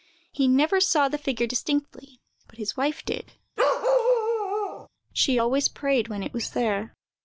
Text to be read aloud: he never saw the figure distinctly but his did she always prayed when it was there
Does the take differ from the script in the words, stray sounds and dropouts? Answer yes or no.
yes